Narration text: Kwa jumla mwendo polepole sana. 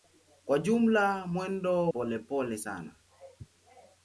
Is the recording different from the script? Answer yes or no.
no